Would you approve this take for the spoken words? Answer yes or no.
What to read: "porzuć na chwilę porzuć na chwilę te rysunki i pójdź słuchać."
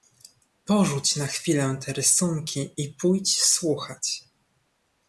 no